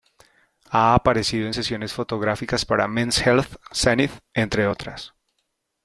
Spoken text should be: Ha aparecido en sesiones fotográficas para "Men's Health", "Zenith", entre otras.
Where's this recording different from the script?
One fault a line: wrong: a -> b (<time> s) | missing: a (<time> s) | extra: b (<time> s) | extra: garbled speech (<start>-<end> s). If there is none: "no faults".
no faults